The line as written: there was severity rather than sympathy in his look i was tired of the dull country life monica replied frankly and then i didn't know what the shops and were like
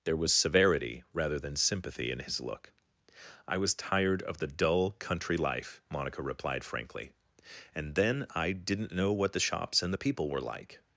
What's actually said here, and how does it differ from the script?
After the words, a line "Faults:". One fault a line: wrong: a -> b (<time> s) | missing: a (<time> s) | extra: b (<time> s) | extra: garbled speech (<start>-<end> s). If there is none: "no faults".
there was severity rather than sympathy in his look i was tired of the dull country life monica replied frankly and then i didn't know what the shops and the people were like
Faults:
extra: the people (9.9 s)